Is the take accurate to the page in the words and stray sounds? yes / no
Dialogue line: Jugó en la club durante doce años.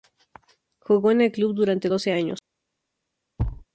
no